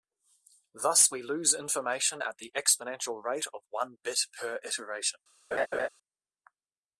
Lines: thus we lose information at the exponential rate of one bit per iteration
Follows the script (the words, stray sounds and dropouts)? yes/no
no